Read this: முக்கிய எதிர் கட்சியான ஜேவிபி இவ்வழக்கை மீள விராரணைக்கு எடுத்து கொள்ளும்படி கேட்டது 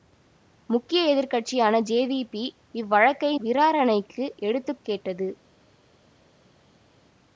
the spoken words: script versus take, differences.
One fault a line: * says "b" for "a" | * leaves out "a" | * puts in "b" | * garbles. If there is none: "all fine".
* leaves out "மீள"
* leaves out "கொள்ளும்படி"